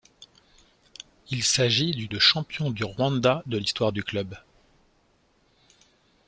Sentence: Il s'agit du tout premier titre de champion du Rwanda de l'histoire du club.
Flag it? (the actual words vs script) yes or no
yes